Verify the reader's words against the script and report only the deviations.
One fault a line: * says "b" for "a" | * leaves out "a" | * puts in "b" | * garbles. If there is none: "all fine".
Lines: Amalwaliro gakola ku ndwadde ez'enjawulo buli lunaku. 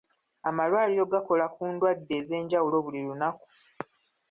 all fine